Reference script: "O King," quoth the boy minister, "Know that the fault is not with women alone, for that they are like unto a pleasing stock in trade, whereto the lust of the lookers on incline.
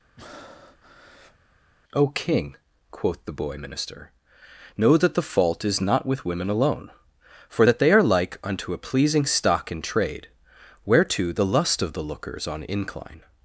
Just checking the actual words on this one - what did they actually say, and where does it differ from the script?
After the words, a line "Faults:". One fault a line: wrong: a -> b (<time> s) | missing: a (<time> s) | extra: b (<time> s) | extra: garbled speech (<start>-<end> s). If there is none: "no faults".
"O King," quoth the boy minister, "Know that the fault is not with women alone, for that they are like unto a pleasing stock in trade, whereto the lust of the lookers on incline.
Faults:
no faults